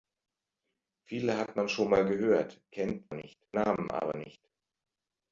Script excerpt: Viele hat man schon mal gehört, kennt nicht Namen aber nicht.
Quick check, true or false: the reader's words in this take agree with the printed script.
true